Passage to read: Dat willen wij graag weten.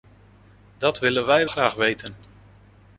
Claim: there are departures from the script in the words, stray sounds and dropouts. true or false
false